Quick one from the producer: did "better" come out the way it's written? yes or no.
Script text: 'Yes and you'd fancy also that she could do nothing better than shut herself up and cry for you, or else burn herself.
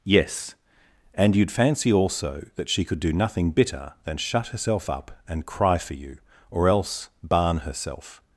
no